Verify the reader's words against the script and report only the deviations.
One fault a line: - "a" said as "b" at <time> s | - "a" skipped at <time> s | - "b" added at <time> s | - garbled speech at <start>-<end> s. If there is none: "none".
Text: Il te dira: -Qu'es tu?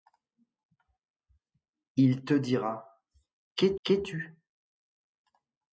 - "qu'es" added at 3.8 s